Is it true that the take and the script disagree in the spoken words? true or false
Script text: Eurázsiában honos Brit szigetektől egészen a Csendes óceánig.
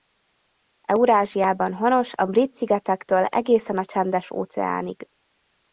true